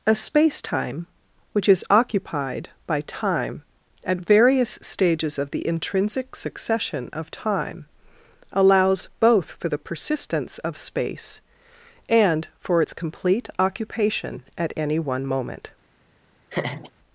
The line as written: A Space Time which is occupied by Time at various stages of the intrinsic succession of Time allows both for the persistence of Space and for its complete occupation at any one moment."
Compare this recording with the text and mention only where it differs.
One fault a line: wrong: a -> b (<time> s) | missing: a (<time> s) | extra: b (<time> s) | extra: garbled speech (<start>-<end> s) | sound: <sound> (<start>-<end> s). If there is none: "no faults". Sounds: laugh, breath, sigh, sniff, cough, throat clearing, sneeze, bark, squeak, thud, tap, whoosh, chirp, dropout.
sound: laugh (16.5-16.9 s)